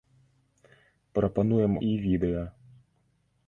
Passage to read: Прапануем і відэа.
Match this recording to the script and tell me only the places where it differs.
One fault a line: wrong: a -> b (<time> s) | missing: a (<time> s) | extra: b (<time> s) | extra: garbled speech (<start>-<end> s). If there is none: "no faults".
no faults